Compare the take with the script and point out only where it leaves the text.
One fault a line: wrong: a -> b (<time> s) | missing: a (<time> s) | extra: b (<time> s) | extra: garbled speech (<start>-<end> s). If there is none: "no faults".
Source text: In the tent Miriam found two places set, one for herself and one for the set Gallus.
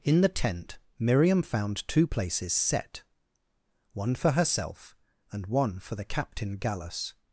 wrong: set -> captain (6.0 s)